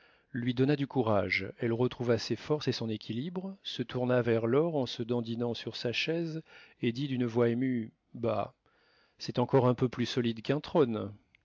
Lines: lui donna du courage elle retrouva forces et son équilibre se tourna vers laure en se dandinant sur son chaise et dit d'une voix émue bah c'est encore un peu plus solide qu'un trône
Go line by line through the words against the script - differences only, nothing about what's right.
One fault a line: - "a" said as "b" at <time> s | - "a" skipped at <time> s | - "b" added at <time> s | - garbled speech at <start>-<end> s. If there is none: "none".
- "ses" added at 2.2 s
- "son" said as "sa" at 5.7 s